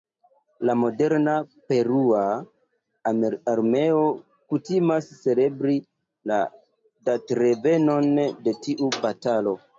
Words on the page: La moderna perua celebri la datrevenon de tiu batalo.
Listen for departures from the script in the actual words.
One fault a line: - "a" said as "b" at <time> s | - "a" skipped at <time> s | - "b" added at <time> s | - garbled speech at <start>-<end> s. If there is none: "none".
- "armeo kutimas" added at 3.5 s